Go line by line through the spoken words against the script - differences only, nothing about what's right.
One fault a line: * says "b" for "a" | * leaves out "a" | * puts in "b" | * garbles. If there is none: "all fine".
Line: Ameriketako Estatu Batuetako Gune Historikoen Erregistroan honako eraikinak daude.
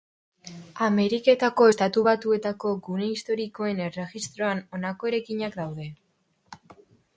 all fine